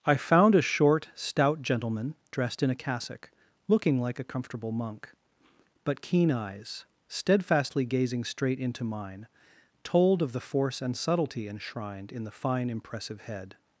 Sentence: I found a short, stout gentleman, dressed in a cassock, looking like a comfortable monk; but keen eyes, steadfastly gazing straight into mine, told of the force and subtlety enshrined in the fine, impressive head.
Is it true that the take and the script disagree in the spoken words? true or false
false